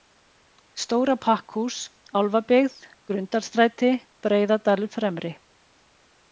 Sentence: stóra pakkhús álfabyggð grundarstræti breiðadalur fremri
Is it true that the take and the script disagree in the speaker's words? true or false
false